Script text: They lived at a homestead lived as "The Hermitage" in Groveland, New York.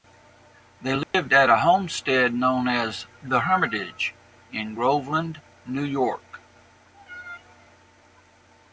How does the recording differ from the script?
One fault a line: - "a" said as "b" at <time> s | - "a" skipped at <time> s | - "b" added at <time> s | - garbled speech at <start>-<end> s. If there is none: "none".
- "lived" said as "known" at 2.3 s